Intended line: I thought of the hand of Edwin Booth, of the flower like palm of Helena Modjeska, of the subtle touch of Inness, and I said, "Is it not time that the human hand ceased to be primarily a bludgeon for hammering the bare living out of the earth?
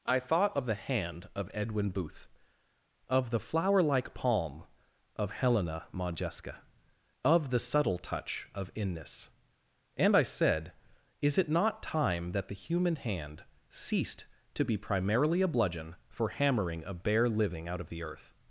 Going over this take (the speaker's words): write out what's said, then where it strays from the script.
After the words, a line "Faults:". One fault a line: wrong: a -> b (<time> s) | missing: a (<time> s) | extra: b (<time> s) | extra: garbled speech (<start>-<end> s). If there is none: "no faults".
I thought of the hand of Edwin Booth, of the flower like palm of Helena Modjeska, of the subtle touch of Inness, and I said, "Is it not time that the human hand ceased to be primarily a bludgeon for hammering a bare living out of the earth?
Faults:
wrong: the -> a (16.8 s)